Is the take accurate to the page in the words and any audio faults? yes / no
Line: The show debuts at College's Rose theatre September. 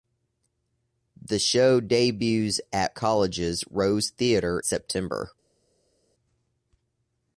yes